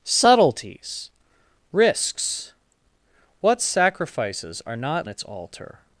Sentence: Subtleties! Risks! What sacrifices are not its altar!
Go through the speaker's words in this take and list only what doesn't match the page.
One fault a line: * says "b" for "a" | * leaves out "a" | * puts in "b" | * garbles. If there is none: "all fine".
all fine